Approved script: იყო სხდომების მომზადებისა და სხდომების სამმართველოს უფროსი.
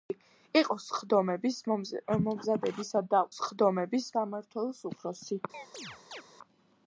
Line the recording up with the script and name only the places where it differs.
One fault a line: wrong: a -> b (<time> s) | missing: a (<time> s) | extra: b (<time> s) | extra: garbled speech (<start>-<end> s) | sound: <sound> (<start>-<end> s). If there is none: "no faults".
sound: chirp (5.5-6.2 s)